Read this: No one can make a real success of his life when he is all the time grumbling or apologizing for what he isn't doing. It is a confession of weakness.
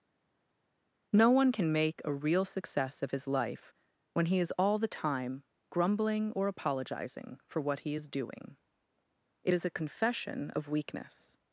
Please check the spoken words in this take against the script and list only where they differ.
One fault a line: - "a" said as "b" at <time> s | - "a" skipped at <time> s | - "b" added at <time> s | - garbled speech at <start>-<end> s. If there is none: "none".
- "isn't" said as "is" at 7.9 s